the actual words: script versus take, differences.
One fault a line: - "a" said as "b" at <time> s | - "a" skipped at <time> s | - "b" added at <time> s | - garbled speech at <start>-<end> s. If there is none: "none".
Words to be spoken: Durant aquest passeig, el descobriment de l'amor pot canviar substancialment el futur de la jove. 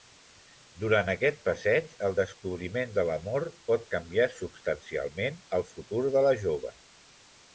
none